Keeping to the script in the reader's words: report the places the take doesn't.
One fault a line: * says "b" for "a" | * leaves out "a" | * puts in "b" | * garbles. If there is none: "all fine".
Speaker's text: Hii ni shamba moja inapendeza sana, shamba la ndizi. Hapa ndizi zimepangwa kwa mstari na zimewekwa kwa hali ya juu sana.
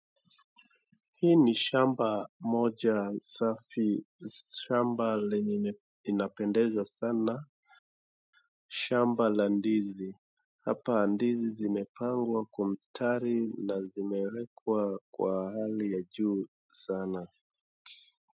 * puts in "safi shamba lenye"